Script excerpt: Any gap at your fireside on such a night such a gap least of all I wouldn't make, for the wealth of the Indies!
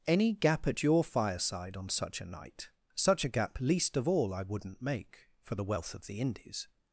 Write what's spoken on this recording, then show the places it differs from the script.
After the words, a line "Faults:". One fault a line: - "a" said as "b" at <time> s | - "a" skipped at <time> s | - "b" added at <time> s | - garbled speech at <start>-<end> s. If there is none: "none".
Any gap at your fireside on such a night such a gap least of all I wouldn't make, for the wealth of the Indies!
Faults:
none